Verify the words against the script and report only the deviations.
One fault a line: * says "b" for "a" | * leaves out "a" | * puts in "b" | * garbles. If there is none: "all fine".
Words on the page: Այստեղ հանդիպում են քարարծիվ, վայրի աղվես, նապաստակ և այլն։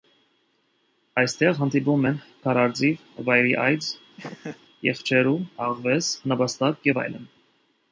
* puts in "այծ եղջերու"